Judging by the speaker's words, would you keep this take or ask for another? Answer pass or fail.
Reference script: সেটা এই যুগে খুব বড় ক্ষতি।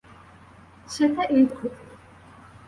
fail